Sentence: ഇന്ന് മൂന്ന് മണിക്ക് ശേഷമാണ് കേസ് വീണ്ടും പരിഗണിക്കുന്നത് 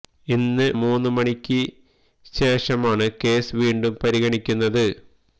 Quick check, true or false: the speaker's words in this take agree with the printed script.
true